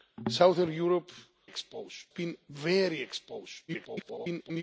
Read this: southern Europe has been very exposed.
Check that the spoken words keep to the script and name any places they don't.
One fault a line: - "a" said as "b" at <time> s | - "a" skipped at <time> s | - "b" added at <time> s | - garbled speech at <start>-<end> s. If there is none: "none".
- "has" said as "exposed" at 1.4 s
- garbled speech at 3.7-4.6 s